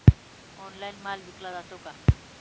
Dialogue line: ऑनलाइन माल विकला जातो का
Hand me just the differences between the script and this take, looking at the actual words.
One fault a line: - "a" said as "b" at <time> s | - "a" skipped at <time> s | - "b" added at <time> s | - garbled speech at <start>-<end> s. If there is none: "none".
none